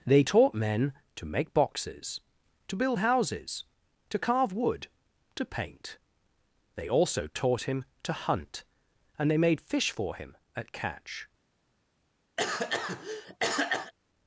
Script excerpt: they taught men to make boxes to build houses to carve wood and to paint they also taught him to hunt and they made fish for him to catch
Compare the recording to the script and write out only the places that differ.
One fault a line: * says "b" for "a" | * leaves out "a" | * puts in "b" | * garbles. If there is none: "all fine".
* leaves out "and"
* says "at" for "to"